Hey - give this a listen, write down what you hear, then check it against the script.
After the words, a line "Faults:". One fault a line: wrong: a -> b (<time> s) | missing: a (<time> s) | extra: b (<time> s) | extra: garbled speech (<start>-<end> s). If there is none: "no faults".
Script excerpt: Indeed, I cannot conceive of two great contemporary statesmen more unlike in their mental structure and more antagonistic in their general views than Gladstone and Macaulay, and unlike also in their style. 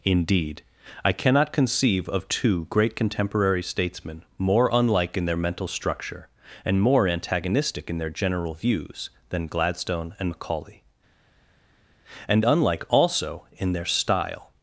Indeed, I cannot conceive of two great contemporary statesmen more unlike in their mental structure and more antagonistic in their general views than Gladstone and Macaulay, and unlike also in their style.
Faults:
no faults